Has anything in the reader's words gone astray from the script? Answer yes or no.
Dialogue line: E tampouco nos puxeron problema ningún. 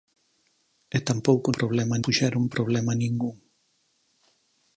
yes